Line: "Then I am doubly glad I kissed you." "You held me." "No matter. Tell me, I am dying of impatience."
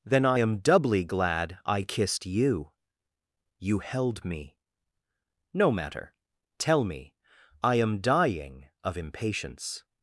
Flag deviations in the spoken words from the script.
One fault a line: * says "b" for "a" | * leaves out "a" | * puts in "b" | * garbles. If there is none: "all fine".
all fine